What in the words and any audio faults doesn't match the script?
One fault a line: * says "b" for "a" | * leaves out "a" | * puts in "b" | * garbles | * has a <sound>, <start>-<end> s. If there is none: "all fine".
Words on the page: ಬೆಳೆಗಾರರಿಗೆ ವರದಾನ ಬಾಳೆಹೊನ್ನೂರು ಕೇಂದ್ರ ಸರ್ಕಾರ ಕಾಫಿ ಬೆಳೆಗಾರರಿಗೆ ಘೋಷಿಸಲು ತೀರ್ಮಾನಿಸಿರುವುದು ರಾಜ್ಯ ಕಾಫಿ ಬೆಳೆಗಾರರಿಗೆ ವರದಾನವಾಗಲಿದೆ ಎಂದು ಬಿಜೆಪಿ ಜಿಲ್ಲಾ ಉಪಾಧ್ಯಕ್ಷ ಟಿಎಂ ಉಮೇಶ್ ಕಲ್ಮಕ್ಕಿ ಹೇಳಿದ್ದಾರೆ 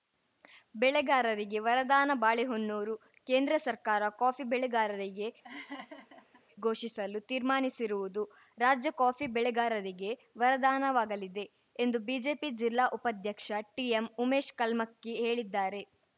* has a laugh, 5.4-6.4 s